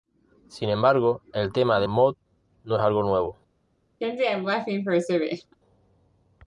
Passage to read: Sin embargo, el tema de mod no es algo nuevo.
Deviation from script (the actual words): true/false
false